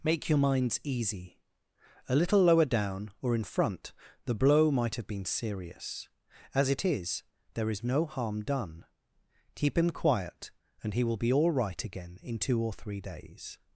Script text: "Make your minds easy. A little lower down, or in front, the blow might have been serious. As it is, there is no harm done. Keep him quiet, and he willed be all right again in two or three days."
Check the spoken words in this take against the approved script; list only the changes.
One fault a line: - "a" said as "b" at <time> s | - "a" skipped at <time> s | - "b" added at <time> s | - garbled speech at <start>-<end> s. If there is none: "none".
- "willed" said as "will" at 11.0 s